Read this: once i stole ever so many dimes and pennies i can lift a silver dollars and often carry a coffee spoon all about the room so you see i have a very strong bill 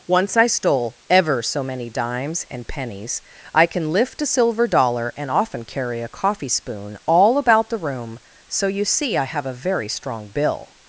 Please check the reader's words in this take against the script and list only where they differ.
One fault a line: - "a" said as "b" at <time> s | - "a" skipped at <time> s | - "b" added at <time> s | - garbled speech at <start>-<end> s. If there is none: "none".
- "dollars" said as "dollar" at 4.7 s